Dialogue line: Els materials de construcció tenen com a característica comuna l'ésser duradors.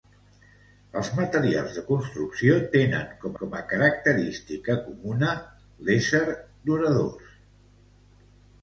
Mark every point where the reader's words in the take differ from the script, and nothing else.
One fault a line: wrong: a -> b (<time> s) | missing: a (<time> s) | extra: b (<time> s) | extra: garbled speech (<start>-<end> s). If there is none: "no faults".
extra: com (3.4 s)